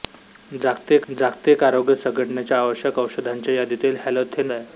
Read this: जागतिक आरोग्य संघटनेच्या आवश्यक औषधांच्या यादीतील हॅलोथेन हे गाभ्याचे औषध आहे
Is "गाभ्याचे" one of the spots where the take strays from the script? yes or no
yes